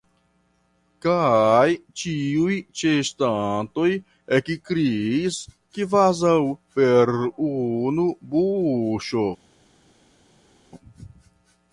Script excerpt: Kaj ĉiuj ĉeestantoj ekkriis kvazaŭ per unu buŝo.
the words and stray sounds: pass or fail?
pass